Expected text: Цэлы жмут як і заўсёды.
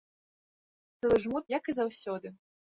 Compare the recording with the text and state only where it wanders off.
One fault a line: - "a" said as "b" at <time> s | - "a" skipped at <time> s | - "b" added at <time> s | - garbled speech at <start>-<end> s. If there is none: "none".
none